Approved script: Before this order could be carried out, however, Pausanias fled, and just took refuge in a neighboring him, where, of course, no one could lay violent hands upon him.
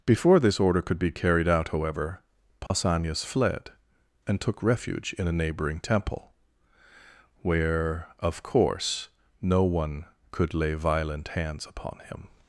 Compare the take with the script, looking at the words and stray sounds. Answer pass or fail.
fail